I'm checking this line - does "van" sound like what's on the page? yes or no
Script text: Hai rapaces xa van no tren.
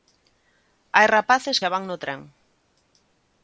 yes